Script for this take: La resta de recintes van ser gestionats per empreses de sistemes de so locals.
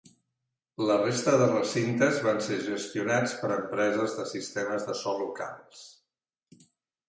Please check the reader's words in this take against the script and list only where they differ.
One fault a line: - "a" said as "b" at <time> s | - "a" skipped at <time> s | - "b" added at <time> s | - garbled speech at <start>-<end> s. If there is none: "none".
none